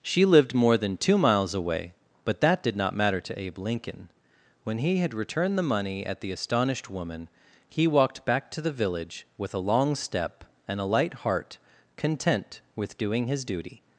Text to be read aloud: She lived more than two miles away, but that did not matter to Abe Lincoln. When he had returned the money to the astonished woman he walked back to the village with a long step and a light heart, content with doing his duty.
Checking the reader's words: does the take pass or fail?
fail